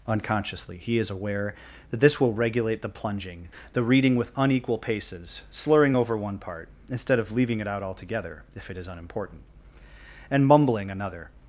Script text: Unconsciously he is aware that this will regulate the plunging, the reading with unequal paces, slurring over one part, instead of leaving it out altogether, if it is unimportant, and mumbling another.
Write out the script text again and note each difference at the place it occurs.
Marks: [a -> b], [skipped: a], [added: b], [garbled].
Unconsciously he is aware that this will regulate the plunging, the reading with unequal paces, slurring over one part, instead of leaving it out altogether, if it is unimportant, and mumbling another.